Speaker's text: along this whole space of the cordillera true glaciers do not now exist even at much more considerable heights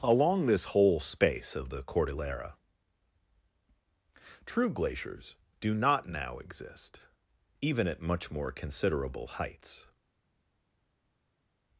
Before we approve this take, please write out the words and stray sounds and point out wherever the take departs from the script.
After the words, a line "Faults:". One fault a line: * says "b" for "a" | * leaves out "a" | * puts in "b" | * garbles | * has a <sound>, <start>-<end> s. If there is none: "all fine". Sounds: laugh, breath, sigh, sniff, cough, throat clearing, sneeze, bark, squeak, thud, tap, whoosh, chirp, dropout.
along this whole space of the cordillera true glaciers do not now exist even at much more considerable heights
Faults:
all fine